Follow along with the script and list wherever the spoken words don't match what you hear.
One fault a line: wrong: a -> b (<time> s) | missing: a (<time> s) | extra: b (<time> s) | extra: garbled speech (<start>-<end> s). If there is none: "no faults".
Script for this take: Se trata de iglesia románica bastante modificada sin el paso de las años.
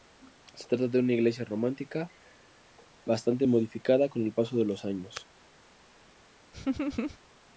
extra: una (1.0 s)
wrong: sin -> con (4.1 s)
wrong: las -> los (4.6 s)